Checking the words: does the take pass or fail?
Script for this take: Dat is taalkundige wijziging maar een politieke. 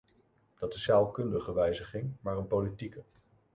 pass